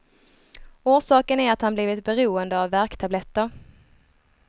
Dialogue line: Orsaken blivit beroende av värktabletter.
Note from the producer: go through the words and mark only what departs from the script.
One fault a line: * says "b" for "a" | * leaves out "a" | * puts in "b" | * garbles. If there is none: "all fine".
* puts in "är att han"